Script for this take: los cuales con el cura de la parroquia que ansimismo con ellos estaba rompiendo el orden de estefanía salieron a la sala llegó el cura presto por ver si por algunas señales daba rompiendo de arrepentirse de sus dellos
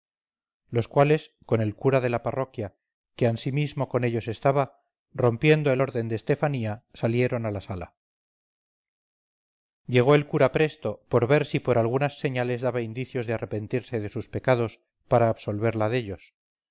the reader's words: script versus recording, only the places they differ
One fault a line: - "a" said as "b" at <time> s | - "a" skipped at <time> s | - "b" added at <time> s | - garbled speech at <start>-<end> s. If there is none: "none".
- "rompiendo" said as "indicios" at 12.8 s
- "pecados para absolverla" added at 14.3 s